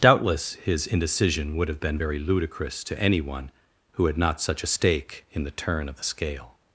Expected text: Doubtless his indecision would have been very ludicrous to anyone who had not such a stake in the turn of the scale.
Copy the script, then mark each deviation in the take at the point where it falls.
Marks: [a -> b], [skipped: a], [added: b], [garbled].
Doubtless his indecision would have been very ludicrous to anyone who had not such a stake in the turn of the scale.